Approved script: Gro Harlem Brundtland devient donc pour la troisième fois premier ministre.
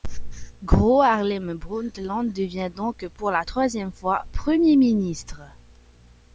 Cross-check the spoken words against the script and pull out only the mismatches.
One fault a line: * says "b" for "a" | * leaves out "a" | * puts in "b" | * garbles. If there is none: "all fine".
all fine